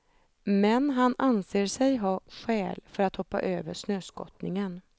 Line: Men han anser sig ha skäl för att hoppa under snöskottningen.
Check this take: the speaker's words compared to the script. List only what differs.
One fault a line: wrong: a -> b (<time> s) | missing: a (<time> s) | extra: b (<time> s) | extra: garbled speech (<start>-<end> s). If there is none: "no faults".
wrong: under -> över (3.4 s)